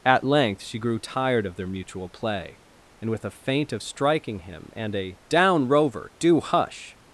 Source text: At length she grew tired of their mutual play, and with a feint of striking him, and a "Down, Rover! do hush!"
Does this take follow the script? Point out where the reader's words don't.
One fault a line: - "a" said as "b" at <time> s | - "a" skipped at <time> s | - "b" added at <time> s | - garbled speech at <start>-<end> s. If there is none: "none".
none